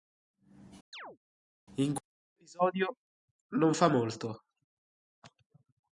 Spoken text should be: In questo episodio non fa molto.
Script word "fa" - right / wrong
right